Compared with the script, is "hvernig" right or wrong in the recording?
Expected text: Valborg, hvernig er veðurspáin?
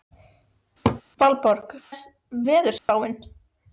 wrong